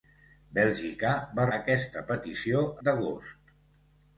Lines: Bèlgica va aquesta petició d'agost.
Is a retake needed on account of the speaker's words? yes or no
no